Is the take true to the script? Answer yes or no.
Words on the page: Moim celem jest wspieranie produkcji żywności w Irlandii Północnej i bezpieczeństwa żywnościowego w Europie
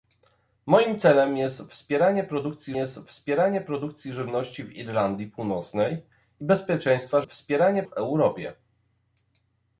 no